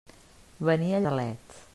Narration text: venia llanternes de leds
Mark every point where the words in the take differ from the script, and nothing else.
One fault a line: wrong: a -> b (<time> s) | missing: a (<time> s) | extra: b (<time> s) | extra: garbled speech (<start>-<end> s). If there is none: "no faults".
missing: llanternes (1.0 s)